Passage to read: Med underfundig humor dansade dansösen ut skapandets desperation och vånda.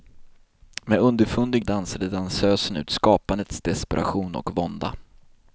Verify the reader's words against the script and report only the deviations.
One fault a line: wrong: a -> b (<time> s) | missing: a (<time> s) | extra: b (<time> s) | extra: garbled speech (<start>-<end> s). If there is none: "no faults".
missing: humor (1.6 s)